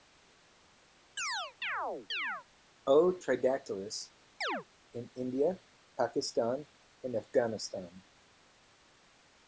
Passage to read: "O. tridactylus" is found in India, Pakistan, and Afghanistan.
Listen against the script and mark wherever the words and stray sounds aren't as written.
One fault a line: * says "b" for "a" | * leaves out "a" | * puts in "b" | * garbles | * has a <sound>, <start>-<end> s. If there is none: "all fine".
* has a chirp, 1.2-2.5 s
* leaves out "is found"
* has a chirp, 4.4-4.6 s